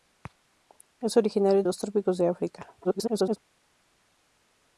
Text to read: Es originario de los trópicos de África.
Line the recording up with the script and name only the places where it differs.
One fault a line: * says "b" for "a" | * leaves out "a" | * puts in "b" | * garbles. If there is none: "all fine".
* leaves out "de"
* garbles